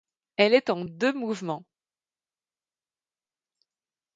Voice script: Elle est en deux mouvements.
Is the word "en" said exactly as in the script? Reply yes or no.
yes